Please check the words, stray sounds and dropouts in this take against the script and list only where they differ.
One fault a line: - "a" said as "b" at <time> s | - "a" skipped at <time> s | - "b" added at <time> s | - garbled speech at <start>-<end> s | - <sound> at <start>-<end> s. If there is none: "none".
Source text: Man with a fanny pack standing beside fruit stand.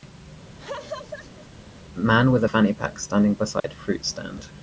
- laugh at 0.6-1.5 s
- dropout at 3.6-3.6 s